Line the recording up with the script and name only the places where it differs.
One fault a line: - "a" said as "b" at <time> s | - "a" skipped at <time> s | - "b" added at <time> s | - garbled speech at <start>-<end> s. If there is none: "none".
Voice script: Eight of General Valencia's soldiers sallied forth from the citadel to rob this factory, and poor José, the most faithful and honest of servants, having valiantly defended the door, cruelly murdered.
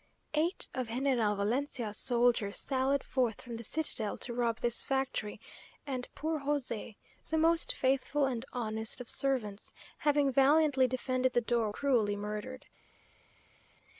none